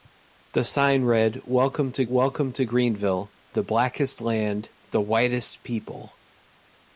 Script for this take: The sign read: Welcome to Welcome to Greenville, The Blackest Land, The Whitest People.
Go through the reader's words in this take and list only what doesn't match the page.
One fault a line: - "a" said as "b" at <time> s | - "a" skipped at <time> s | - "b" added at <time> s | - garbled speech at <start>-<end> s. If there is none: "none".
none